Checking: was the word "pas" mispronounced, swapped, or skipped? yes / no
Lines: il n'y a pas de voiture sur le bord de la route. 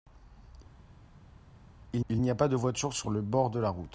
no